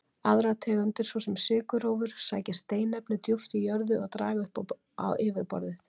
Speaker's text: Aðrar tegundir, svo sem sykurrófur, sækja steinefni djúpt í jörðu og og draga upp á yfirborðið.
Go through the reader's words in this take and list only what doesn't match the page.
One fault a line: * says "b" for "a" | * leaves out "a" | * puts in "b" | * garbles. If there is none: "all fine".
* leaves out "og"